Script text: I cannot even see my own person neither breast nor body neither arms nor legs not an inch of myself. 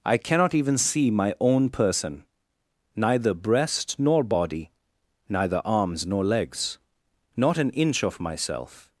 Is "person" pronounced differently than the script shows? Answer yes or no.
no